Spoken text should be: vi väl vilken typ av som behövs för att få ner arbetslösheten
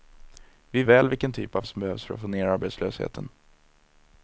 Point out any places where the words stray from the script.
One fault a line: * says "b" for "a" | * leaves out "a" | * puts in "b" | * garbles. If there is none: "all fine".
all fine